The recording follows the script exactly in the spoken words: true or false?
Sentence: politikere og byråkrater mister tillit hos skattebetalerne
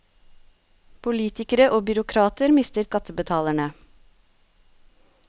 false